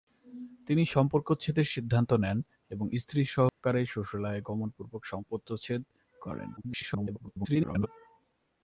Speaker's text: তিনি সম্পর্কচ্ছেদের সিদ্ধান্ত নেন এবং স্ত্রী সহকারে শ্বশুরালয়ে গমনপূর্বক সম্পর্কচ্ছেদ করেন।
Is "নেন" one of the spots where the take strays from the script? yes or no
no